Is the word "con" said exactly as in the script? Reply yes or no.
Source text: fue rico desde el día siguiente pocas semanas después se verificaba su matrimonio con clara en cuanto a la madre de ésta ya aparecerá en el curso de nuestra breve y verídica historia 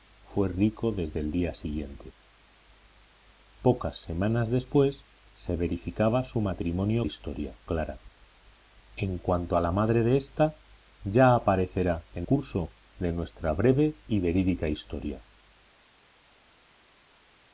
no